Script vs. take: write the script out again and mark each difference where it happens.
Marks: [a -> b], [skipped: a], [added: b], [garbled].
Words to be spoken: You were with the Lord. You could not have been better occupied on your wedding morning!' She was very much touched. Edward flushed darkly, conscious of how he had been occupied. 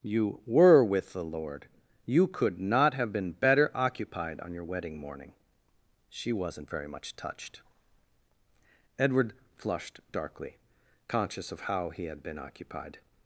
You were with the Lord. You could not have been better occupied on your wedding morning!' She [was -> wasn't] very much touched. Edward flushed darkly, conscious of how he had been occupied.